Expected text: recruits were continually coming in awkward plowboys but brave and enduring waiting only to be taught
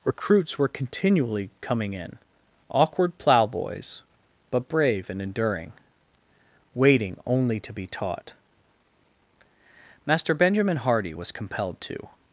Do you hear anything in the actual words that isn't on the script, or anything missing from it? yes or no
yes